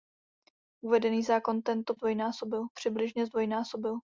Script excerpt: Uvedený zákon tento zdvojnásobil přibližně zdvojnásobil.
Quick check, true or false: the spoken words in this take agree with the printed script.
true